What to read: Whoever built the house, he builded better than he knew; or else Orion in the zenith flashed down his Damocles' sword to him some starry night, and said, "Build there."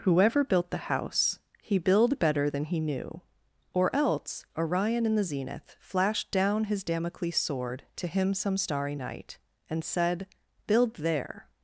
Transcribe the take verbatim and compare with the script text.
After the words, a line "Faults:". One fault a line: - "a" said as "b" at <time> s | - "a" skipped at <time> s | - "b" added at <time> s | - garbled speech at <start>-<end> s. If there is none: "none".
Whoever built the house, he build better than he knew; or else Orion in the zenith flashed down his Damocles' sword to him some starry night, and said, "Build there."
Faults:
- "builded" said as "build" at 1.8 s